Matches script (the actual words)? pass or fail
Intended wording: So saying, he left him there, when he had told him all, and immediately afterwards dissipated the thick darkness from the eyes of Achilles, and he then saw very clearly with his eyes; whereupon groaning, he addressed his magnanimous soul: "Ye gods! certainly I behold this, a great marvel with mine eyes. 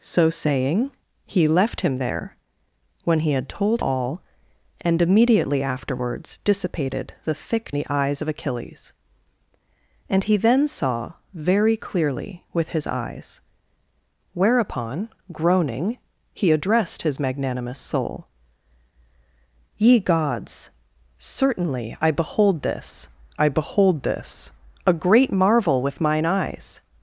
fail